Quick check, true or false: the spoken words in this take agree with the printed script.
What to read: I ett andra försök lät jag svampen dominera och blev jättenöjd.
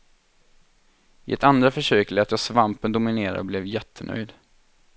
true